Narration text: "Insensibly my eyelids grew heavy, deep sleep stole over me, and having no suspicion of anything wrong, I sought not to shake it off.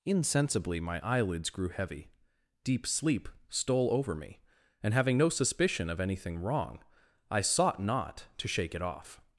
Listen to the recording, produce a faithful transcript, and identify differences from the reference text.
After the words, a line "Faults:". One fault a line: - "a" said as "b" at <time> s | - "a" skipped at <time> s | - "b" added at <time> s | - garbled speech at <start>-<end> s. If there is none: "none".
"Insensibly my eyelids grew heavy, deep sleep stole over me, and having no suspicion of anything wrong, I sought not to shake it off.
Faults:
none